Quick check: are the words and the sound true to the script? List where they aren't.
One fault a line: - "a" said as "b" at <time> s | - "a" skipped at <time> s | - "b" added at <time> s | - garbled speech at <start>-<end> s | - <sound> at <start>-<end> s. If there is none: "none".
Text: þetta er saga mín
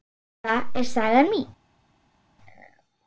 none